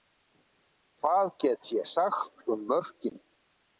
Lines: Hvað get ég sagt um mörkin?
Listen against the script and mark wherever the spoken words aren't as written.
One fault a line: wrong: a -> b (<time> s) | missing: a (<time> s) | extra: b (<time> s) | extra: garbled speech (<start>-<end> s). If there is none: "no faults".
no faults